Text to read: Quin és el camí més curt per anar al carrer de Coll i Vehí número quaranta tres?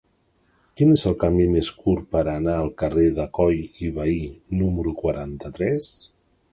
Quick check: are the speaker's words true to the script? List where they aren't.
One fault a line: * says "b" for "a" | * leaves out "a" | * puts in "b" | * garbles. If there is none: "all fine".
all fine